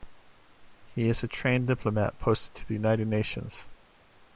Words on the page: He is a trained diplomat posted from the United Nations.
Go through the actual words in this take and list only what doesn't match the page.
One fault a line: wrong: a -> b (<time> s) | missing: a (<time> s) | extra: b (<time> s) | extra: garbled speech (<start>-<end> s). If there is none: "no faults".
wrong: from -> to (2.5 s)